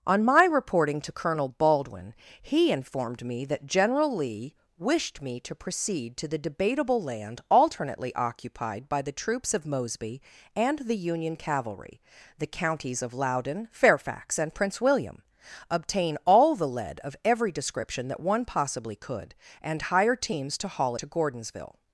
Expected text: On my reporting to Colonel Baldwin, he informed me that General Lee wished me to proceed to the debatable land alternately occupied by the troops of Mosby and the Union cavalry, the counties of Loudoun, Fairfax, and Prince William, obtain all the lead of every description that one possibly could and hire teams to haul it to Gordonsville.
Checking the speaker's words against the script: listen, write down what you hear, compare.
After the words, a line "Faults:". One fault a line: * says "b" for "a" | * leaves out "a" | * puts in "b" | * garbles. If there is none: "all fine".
On my reporting to Colonel Baldwin, he informed me that General Lee wished me to proceed to the debatable land alternately occupied by the troops of Mosby and the Union cavalry, the counties of Loudoun, Fairfax, and Prince William, obtain all the lead of every description that one possibly could and hire teams to haul to Gordonsville.
Faults:
* leaves out "it"